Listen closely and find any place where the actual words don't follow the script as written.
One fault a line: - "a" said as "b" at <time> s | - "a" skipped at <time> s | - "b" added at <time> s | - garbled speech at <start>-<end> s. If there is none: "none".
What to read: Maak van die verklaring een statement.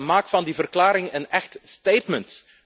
- "echt" added at 1.3 s